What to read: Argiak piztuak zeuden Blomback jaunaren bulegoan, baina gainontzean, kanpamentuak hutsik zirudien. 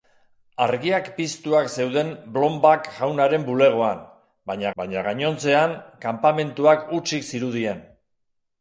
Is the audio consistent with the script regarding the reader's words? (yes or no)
no